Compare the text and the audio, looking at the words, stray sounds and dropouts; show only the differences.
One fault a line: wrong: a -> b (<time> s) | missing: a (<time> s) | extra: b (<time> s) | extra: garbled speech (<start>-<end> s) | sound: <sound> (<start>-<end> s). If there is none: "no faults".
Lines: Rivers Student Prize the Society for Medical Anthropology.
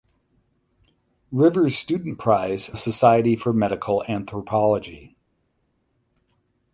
no faults